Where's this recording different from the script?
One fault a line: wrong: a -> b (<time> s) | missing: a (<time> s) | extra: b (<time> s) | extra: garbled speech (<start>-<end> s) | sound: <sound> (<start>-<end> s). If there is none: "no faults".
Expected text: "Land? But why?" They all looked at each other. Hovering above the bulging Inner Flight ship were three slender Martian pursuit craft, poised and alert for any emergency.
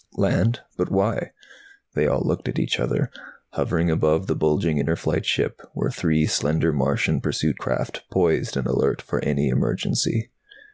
no faults